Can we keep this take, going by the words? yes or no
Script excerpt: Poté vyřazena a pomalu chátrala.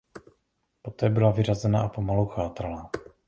no